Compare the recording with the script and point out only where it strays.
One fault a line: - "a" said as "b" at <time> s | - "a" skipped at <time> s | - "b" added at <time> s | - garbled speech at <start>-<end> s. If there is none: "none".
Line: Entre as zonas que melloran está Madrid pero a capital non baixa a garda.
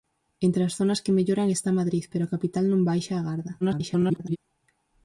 - garbled speech at 3.6-4.4 s